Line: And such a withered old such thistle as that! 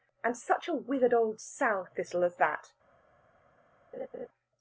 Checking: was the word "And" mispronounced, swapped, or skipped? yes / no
no